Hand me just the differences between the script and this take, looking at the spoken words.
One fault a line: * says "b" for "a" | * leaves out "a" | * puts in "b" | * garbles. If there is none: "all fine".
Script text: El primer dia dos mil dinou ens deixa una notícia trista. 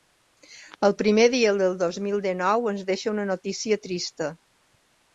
* puts in "del"